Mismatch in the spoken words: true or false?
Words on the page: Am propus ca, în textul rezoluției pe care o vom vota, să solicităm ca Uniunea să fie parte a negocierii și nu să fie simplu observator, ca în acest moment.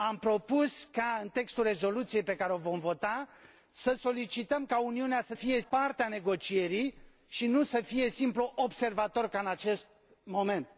false